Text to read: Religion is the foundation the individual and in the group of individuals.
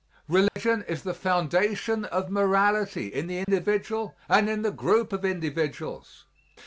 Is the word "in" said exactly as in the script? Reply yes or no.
yes